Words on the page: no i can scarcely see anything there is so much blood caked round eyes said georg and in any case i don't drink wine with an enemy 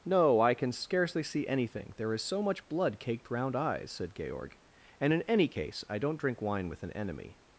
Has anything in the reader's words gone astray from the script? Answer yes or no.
no